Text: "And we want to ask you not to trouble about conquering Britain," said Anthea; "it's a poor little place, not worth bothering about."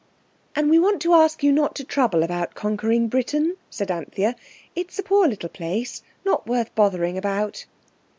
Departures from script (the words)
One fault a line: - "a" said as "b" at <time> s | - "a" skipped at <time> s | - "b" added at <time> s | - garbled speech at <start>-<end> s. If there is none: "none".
none